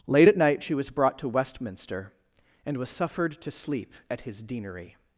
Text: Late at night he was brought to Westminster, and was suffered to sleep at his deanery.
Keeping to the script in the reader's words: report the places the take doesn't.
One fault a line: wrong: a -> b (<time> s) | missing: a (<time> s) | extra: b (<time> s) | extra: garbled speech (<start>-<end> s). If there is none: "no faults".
wrong: he -> she (0.6 s)